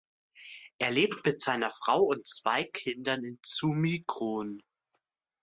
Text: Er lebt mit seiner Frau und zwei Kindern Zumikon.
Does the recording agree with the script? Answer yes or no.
no